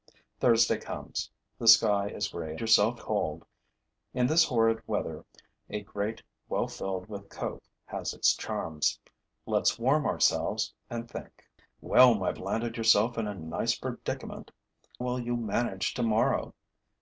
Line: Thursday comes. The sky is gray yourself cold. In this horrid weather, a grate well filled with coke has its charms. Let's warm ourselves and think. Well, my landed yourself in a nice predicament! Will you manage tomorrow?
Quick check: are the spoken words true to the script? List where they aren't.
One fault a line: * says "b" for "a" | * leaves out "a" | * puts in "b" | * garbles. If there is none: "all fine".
all fine